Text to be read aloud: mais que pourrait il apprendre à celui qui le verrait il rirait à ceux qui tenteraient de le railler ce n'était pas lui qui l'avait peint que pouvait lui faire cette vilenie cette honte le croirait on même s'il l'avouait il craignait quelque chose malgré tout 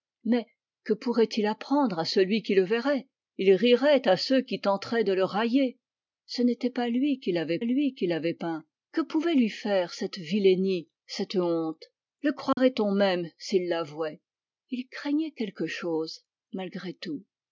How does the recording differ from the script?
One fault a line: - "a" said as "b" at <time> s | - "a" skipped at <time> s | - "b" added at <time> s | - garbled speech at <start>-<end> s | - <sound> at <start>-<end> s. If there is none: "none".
- "lui qui l'avait" added at 7.6 s
- dropout at 12.5-12.6 s